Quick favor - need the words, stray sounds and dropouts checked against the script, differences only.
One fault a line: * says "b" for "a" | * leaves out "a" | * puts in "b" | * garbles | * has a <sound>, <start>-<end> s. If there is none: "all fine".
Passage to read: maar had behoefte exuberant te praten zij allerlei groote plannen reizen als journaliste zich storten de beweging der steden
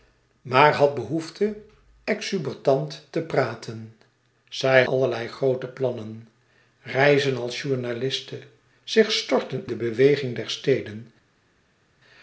all fine